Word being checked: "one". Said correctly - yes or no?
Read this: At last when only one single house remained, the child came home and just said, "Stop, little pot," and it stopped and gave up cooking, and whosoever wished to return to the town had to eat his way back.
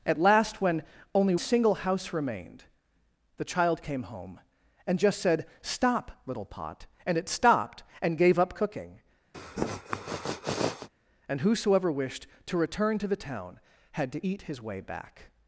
no